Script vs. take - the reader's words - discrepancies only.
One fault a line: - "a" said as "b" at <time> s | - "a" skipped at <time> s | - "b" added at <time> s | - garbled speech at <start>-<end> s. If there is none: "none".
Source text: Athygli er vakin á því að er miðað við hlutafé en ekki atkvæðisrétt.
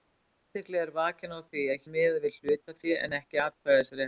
none